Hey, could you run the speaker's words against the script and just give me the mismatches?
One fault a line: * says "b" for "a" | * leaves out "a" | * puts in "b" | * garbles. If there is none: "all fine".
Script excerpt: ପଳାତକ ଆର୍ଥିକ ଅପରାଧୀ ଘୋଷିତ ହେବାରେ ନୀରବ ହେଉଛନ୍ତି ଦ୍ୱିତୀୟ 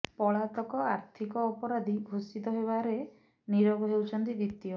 all fine